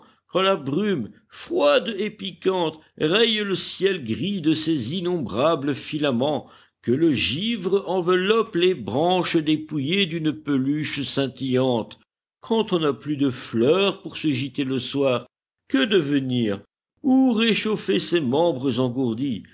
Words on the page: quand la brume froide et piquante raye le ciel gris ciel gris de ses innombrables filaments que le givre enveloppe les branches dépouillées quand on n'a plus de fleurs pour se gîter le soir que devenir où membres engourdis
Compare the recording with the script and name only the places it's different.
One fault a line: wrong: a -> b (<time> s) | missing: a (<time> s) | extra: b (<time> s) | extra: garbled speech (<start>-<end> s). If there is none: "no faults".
missing: ciel gris (4.4 s)
extra: d'une peluche scintillante (10.1 s)
extra: réchauffer ses (17.3 s)